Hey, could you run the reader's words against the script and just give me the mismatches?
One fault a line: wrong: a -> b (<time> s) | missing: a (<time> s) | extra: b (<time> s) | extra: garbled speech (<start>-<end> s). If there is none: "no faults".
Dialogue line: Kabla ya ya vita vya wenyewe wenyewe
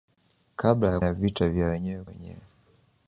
no faults